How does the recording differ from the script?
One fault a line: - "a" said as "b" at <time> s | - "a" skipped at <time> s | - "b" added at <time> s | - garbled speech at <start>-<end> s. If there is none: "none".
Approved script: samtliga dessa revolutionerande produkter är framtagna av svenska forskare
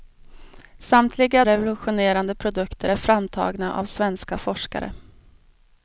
- "dessa" skipped at 1.4 s